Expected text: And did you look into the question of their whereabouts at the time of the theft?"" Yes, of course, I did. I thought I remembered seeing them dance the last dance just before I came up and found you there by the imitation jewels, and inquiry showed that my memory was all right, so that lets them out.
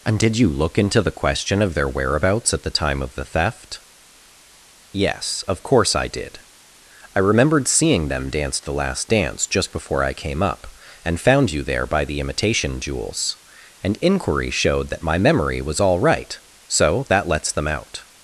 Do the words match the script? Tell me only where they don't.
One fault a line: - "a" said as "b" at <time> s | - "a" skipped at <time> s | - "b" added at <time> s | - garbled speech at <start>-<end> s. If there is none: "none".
- "thought I" skipped at 7.2 s